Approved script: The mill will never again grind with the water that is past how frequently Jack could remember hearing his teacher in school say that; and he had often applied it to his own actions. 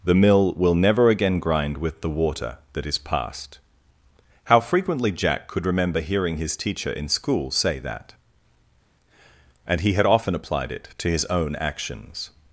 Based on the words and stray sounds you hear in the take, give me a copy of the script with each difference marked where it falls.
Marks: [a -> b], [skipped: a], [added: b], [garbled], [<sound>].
The mill will never again grind with the water that is past how frequently Jack could remember hearing his teacher in school say that; and he had often applied it to his own actions.